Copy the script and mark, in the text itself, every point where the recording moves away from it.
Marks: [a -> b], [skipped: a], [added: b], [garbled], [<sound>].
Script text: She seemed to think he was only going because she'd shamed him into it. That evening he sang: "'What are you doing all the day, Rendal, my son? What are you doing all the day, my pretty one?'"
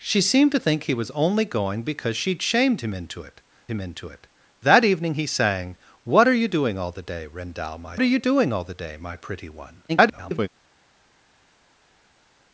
She seemed to think he was only going because she'd shamed him into it. [added: him into it] That evening he sang: "'What are you doing all the day, Rendal, my [skipped: son? What] are you doing all the day, my pretty one?'" [garbled]